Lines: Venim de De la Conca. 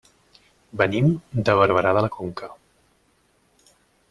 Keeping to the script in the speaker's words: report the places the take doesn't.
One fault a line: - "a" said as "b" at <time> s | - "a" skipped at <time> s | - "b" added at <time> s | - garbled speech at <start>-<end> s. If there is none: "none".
- "Barberà" added at 1.6 s